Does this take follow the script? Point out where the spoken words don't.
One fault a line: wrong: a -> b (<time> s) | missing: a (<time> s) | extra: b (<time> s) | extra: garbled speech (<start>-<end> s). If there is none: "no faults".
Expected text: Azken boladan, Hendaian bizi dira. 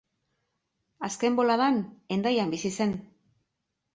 wrong: dira -> zen (2.8 s)